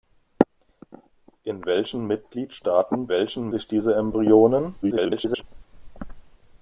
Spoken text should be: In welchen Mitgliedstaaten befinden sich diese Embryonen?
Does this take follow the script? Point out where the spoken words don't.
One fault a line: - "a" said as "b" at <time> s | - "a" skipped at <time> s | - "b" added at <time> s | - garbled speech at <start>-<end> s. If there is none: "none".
- "befinden" said as "welchen" at 3.1 s
- garbled speech at 4.8-5.4 s